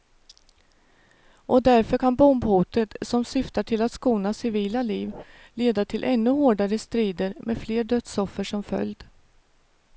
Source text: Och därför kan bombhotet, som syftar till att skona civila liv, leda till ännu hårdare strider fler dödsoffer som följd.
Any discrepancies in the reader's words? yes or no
yes